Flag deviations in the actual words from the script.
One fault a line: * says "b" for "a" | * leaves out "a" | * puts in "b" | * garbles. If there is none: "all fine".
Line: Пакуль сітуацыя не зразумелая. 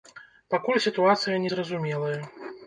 all fine